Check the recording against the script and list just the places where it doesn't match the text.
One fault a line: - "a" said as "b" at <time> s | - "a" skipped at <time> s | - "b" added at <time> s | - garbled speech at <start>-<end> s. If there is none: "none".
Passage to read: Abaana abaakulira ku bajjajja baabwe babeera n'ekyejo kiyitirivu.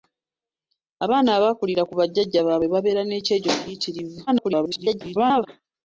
- garbled speech at 4.3-5.5 s